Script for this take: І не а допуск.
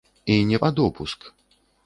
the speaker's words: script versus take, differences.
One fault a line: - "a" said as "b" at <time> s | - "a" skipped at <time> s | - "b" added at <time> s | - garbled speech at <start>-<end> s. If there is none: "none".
none